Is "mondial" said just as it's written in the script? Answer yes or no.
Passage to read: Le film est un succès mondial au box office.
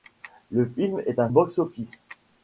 no